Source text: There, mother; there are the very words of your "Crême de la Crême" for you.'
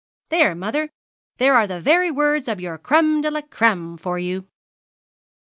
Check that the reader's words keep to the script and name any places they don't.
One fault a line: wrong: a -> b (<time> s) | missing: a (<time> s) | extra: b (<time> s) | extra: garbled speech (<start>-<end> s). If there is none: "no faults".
no faults